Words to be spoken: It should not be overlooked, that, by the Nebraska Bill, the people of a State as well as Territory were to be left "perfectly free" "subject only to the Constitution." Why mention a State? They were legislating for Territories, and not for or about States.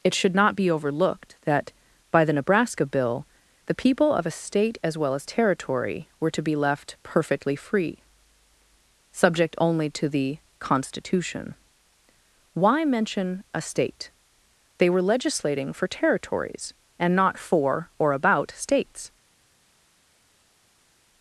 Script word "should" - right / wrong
right